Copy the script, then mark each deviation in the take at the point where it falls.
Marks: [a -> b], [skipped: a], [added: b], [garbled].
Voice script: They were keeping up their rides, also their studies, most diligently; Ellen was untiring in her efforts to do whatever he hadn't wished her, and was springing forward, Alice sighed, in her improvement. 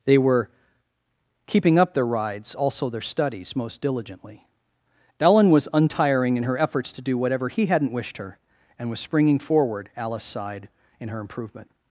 They were keeping up their rides, also their studies, most diligently; Ellen was untiring in her efforts to do whatever he hadn't wished her, and was springing forward, Alice sighed, in her improvement.